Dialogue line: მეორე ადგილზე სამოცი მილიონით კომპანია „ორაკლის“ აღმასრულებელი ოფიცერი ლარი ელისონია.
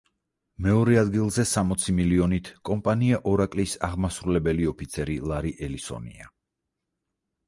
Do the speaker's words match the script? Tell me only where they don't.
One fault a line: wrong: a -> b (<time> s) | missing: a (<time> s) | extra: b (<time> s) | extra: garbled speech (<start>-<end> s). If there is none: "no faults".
no faults